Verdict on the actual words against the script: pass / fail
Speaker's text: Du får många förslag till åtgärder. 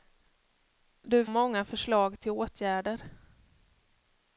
fail